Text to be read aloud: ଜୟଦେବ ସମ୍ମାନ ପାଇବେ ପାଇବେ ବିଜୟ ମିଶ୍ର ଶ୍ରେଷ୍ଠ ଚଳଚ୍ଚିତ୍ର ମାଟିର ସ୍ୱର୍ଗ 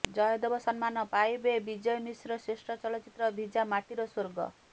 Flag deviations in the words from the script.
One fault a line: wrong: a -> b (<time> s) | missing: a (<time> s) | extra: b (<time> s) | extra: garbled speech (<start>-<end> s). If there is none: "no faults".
missing: ପାଇବେ (1.5 s)
extra: ଭିଜା (3.3 s)